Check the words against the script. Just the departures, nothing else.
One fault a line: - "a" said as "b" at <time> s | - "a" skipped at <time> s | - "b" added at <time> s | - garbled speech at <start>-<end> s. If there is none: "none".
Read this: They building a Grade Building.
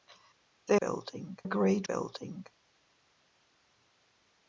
none